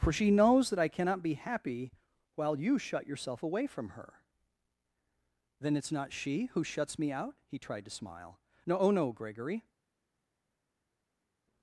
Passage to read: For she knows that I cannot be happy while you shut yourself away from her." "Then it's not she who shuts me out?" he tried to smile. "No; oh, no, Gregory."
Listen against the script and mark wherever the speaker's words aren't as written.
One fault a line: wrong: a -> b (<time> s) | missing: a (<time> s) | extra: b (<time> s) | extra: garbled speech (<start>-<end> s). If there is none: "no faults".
no faults